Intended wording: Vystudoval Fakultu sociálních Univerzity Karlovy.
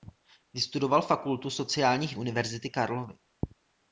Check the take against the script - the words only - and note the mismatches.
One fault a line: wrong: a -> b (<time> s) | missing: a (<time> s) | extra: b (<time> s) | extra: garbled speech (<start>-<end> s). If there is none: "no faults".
no faults